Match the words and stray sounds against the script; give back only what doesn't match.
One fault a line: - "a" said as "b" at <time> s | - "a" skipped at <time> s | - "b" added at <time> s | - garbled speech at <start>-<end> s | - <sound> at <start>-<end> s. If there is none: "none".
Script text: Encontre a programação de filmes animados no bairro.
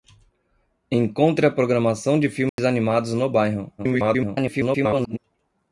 - dropout at 2.5-2.6 s
- garbled speech at 3.8-5.2 s